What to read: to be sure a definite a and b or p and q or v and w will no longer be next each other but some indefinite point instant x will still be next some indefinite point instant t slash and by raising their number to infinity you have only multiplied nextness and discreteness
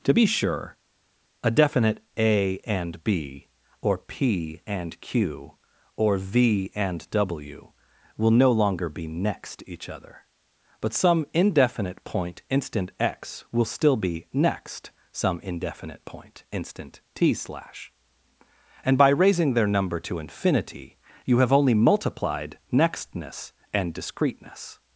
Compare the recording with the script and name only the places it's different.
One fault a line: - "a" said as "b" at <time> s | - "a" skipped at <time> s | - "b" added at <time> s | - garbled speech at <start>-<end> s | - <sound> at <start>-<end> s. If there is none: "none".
none